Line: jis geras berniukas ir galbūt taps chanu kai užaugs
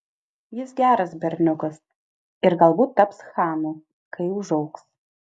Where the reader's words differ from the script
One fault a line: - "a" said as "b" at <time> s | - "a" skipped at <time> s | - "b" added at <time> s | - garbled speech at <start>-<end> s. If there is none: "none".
none